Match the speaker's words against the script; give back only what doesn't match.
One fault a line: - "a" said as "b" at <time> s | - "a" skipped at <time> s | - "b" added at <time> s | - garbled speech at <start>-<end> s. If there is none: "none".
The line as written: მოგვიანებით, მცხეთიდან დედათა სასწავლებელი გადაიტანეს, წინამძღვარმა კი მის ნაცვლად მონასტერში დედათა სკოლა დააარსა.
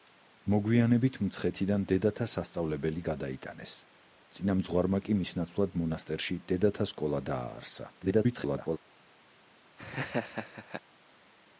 - garbled speech at 8.0-8.8 s